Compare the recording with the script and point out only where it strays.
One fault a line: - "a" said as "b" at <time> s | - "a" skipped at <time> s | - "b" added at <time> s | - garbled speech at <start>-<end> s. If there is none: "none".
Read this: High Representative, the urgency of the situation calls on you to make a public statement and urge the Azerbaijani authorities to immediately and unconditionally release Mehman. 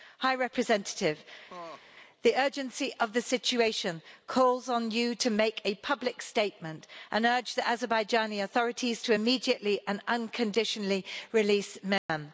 none